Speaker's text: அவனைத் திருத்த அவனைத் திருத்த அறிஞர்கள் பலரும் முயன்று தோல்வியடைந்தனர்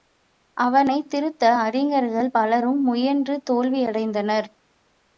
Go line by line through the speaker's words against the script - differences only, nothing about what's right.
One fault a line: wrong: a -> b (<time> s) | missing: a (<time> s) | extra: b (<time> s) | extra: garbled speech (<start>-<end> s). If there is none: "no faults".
missing: அவனைத் திருத்த (1.5 s)